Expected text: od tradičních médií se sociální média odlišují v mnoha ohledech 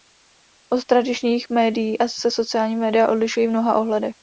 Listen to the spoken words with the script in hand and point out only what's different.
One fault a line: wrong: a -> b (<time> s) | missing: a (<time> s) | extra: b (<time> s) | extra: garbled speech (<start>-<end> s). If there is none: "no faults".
no faults